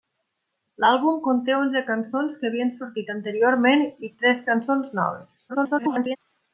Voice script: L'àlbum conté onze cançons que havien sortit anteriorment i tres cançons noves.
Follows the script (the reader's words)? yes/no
no